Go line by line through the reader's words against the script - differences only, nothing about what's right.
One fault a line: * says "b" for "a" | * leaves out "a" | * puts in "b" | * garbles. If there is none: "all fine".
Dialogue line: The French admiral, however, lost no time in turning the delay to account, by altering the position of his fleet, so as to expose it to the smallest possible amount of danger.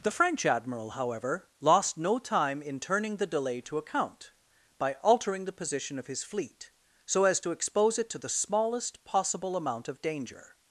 all fine